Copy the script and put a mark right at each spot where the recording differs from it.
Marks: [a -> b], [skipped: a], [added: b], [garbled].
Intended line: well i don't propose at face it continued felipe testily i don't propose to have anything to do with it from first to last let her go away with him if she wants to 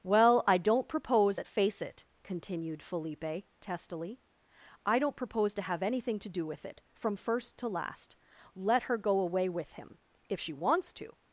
well i don't propose at face it continued felipe testily i don't propose to have anything to do with it from first to last let her go away with him if she wants to